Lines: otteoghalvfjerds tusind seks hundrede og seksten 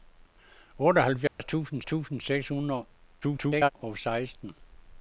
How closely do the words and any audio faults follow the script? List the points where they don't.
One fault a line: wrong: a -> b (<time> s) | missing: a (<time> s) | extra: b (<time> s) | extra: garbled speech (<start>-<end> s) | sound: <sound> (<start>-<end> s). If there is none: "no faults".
sound: dropout (1.3-1.4 s)
extra: tusind (1.8 s)
extra: garbled speech (3.2-3.7 s)